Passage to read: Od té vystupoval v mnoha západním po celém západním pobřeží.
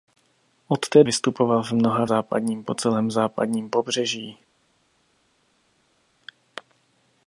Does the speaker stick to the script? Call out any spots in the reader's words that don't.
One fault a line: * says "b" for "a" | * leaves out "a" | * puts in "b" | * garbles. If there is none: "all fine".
all fine